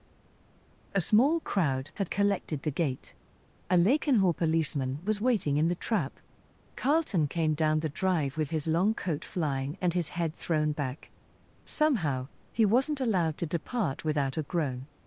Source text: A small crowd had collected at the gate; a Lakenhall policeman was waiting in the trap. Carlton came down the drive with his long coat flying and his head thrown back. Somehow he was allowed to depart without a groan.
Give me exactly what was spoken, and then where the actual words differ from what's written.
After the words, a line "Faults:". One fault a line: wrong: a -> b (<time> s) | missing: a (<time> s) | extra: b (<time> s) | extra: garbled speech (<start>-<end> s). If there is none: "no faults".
A small crowd had collected the gate; a Lakenhall policeman was waiting in the trap. Carlton came down the drive with his long coat flying and his head thrown back. Somehow he wasn't allowed to depart without a groan.
Faults:
missing: at (2.6 s)
wrong: was -> wasn't (12.6 s)